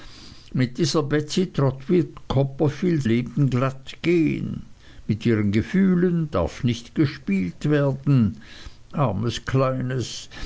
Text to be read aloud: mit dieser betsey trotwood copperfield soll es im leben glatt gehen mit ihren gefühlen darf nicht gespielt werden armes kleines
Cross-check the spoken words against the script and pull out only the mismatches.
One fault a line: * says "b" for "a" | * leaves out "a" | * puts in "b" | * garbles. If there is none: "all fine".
* leaves out "soll es im"